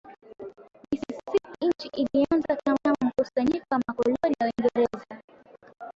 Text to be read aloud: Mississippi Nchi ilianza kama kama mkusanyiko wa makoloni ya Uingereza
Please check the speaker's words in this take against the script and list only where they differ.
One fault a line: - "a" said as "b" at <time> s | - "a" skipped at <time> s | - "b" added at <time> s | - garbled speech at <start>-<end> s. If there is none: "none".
none